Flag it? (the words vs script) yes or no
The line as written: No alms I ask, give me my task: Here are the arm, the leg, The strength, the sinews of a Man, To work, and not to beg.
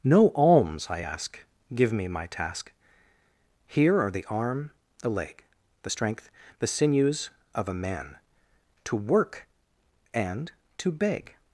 yes